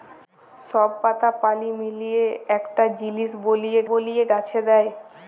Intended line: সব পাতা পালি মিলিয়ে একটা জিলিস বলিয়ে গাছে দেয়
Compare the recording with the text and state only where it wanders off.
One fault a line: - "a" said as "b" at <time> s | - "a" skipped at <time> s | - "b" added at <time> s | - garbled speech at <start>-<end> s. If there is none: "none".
- "বলিয়ে" added at 3.9 s